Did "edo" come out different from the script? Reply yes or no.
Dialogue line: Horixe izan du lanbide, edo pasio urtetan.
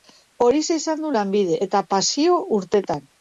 yes